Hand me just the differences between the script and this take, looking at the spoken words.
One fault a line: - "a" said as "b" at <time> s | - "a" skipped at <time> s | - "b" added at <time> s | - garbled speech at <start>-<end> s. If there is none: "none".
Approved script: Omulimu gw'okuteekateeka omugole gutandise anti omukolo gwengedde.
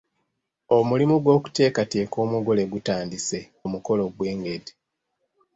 - "anti" skipped at 3.4 s